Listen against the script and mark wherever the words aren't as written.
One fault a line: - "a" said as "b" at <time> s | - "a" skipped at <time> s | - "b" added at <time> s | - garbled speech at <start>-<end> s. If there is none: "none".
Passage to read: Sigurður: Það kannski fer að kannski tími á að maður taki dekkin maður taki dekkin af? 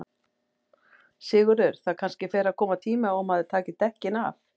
- "kannski" said as "koma" at 2.6 s
- "maður taki dekkin" skipped at 4.2 s